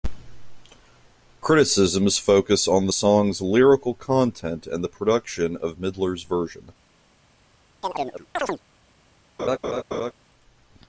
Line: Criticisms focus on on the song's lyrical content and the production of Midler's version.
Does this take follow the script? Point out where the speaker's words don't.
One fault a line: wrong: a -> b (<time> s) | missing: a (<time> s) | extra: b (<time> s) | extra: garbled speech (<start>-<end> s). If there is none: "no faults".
missing: on (2.9 s)